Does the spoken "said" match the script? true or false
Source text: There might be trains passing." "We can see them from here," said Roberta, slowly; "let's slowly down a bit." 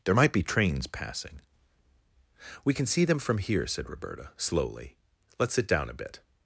true